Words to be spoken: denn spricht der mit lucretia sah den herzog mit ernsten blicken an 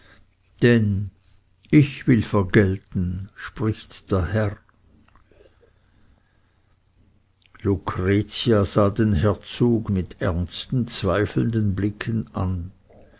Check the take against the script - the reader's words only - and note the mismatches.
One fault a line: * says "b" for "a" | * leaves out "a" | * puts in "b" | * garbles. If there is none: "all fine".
* puts in "ich will vergelten"
* says "herr" for "mit"
* puts in "zweifelnden"